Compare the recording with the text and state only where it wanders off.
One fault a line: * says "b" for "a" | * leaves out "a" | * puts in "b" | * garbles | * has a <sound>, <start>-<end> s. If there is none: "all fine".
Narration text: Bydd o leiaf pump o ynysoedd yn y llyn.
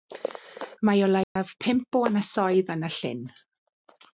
* says "Mae" for "Bydd"
* has a dropout, 1.2-1.4 s